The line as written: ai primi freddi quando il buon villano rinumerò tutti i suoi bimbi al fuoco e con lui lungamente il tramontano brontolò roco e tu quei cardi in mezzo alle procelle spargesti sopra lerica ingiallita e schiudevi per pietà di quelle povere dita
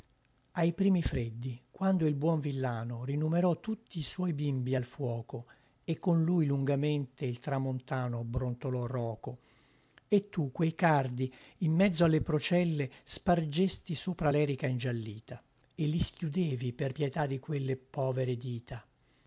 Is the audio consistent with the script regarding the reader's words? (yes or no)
no